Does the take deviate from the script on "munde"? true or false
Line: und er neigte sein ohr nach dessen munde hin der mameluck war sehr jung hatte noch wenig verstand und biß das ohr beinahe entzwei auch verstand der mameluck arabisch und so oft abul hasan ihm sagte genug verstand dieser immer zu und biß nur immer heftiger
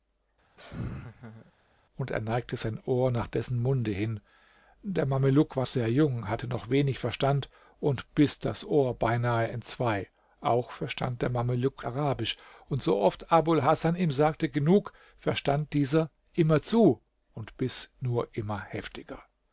false